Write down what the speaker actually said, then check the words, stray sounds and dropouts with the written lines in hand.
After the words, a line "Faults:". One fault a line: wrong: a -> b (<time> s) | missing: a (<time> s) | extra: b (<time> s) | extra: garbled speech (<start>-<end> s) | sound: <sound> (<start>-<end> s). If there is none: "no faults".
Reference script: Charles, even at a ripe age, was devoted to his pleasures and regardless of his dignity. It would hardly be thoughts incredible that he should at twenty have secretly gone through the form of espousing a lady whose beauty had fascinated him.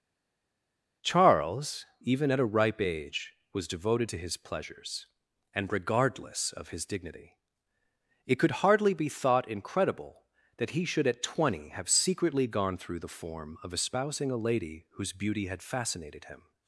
Charles, even at a ripe age, was devoted to his pleasures and regardless of his dignity. It could hardly be thought incredible that he should at twenty have secretly gone through the form of espousing a lady whose beauty had fascinated him.
Faults:
wrong: would -> could (8.3 s)
wrong: thoughts -> thought (9.1 s)